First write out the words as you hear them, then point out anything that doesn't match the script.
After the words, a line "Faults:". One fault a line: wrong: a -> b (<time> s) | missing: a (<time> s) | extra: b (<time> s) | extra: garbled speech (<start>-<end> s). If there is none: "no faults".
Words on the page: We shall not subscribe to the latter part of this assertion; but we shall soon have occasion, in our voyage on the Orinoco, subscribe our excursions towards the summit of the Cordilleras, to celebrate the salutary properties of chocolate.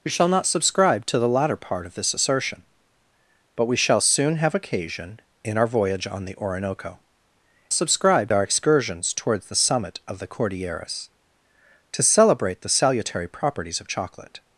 We shall not subscribe to the latter part of this assertion; but we shall soon have occasion, in our voyage on the Orinoco, subscribe our excursions towards the summit of the Cordilleras, to celebrate the salutary properties of chocolate.
Faults:
no faults